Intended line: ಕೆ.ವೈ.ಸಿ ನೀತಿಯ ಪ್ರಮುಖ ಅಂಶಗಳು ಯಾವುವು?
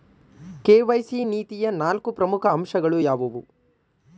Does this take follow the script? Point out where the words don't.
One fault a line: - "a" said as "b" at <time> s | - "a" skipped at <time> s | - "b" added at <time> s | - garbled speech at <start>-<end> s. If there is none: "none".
- "ನಾಲ್ಕು" added at 1.7 s